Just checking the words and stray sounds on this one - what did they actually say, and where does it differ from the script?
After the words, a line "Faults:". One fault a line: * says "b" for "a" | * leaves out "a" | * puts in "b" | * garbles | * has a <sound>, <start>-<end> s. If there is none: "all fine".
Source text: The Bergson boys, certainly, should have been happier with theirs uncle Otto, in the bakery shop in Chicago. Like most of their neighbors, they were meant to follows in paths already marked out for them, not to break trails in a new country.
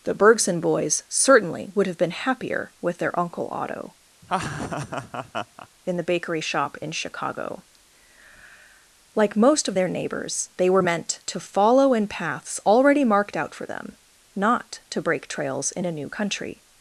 The Bergson boys, certainly, would have been happier with their uncle Otto, in the bakery shop in Chicago. Like most of their neighbors, they were meant to follow in paths already marked out for them, not to break trails in a new country.
Faults:
* says "would" for "should"
* says "their" for "theirs"
* has a laugh, 4.2-5.7 s
* says "follow" for "follows"